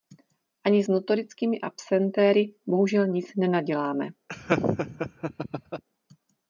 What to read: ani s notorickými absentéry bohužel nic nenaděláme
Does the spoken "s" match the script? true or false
false